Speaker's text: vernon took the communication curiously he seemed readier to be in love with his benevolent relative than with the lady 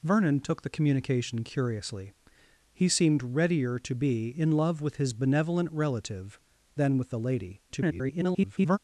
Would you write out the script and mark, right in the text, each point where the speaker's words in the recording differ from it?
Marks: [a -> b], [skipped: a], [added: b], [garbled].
vernon took the communication curiously he seemed readier to be in love with his benevolent relative than with the lady [garbled]